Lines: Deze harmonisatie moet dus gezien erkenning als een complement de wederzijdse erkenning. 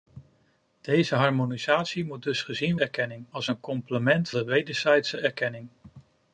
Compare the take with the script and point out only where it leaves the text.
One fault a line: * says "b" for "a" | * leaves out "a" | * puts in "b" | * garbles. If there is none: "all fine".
all fine